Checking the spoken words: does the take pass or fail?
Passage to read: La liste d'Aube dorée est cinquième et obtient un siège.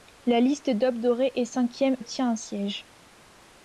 fail